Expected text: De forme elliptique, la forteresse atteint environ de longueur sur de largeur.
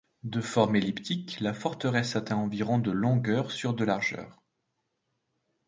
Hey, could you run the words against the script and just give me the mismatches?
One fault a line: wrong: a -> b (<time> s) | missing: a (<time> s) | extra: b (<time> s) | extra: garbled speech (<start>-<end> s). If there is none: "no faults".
no faults